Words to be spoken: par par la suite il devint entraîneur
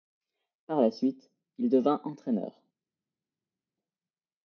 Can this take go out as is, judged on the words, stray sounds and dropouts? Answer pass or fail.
fail